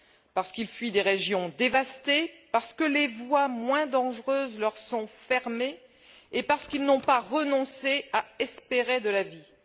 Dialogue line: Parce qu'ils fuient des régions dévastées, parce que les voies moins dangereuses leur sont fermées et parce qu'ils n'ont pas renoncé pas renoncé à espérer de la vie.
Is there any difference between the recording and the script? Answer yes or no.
yes